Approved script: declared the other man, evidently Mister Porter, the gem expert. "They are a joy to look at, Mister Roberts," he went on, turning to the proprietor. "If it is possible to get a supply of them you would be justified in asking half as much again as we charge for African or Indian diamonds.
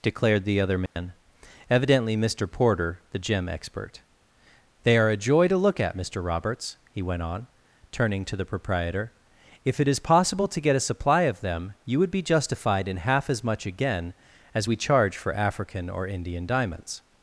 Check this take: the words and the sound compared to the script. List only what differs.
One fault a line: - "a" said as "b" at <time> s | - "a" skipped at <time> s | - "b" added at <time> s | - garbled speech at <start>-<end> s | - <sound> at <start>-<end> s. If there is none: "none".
- dropout at 0.9-1.0 s
- "asking" skipped at 13.0 s